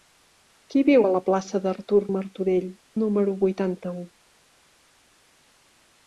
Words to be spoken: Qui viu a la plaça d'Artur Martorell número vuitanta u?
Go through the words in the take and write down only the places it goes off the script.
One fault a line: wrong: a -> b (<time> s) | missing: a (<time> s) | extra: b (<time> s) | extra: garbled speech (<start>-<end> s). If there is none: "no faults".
no faults